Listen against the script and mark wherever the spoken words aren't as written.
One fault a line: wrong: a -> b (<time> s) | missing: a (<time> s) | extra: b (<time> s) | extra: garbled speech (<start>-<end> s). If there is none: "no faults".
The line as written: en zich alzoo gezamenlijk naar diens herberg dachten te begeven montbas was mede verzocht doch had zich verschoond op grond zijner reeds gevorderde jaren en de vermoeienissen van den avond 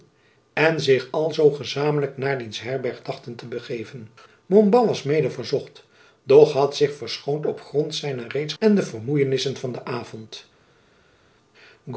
missing: gevorderde jaren (8.5 s)